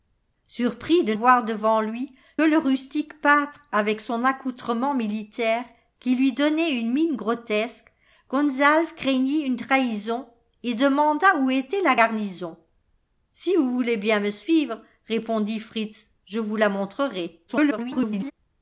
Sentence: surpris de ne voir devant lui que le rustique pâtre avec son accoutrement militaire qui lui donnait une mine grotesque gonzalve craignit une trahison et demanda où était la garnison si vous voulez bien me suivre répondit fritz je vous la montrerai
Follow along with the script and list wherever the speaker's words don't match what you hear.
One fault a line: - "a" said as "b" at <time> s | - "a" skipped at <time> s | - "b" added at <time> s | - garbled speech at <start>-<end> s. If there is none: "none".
- "ne" skipped at 1.1 s
- "que" skipped at 2.1 s
- garbled speech at 17.5-18.3 s